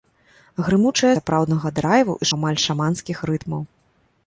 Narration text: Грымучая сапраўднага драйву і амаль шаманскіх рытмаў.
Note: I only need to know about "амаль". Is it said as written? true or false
true